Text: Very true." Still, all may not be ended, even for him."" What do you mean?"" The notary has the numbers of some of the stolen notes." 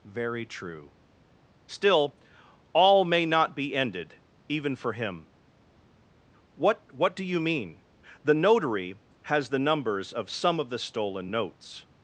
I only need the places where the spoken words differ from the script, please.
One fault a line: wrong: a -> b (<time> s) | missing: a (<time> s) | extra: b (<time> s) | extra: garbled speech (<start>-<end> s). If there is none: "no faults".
extra: What (6.9 s)